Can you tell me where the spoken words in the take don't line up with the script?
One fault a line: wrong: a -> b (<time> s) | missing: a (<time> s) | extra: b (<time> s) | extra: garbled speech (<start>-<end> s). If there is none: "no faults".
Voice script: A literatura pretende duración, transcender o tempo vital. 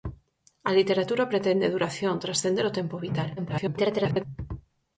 extra: garbled speech (3.4-4.2 s)